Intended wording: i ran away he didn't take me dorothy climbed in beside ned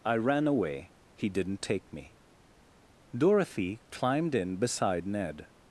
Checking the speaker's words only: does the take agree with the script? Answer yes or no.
yes